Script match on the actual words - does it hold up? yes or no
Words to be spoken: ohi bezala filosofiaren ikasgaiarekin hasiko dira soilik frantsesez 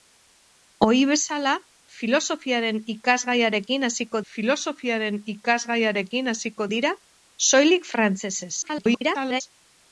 no